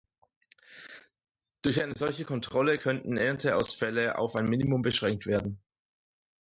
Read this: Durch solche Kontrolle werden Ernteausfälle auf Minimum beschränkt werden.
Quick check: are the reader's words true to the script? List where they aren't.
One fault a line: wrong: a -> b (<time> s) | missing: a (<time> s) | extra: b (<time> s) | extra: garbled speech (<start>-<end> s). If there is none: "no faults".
extra: eine (1.8 s)
wrong: werden -> könnten (2.8 s)
extra: ein (4.3 s)